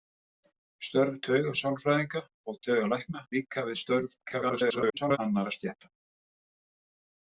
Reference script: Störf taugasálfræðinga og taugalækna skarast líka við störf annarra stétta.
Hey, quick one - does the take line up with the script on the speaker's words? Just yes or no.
no